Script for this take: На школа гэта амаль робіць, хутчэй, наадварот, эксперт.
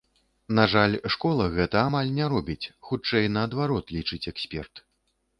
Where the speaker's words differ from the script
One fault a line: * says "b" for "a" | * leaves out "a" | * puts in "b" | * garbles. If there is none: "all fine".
* puts in "жаль"
* puts in "не"
* puts in "лічыць"